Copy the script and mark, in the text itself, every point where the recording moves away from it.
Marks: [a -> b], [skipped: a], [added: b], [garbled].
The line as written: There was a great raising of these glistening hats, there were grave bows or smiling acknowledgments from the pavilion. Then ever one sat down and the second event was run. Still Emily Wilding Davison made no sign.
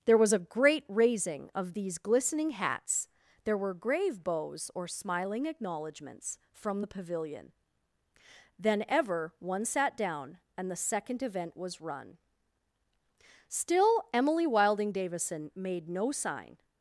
There was a great raising of these glistening hats, there were grave bows or smiling acknowledgments from the pavilion. Then ever one sat down and the second event was run. Still Emily Wilding Davison made no sign.